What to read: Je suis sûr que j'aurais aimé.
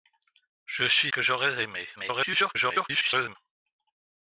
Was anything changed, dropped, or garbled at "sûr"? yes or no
yes